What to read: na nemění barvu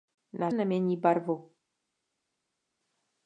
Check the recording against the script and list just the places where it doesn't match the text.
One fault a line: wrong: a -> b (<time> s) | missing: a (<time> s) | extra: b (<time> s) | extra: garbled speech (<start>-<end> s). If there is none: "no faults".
no faults